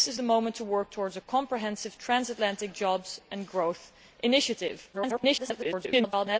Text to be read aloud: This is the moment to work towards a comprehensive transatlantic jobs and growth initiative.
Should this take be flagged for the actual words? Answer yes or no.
yes